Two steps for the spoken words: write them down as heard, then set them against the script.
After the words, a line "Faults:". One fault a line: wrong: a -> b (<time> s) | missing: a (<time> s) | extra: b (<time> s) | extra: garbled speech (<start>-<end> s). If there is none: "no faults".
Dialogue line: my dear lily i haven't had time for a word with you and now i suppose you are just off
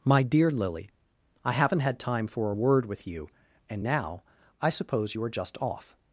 my dear lily i haven't had time for a word with you and now i suppose you are just off
Faults:
no faults